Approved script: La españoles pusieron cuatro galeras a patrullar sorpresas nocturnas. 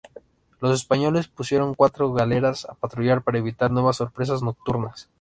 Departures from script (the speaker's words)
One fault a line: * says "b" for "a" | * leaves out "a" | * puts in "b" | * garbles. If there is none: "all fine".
* says "Los" for "La"
* puts in "para evitar nuevas"